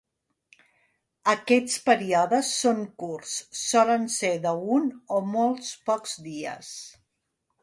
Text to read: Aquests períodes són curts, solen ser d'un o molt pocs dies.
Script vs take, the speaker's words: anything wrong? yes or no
no